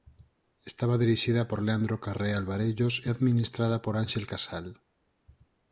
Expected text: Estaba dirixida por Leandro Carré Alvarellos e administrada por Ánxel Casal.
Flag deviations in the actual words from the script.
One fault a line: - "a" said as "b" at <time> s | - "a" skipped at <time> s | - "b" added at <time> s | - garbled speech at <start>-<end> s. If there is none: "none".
none